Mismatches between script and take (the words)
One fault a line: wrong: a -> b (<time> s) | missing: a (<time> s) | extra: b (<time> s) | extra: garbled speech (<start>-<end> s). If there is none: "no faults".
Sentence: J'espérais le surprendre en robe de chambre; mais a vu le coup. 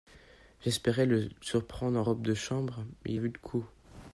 no faults